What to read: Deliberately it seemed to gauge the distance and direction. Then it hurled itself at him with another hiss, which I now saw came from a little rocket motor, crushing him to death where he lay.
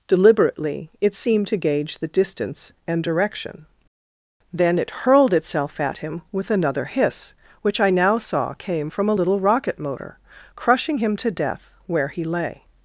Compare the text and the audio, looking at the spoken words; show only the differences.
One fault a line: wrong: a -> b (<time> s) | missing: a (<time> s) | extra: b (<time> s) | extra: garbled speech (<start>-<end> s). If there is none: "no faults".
no faults